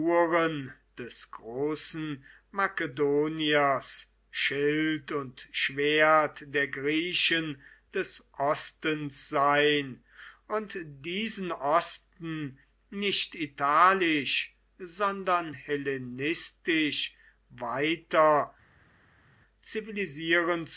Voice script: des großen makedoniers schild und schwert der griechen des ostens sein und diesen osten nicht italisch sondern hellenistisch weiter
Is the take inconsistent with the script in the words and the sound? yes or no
no